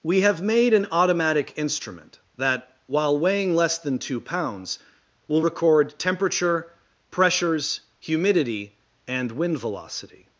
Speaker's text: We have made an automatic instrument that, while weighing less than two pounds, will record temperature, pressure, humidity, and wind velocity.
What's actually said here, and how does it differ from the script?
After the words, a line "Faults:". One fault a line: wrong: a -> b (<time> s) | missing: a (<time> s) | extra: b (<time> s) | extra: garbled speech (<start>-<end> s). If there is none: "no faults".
We have made an automatic instrument that, while weighing less than two pounds, will record temperature, pressures, humidity, and wind velocity.
Faults:
wrong: pressure -> pressures (7.1 s)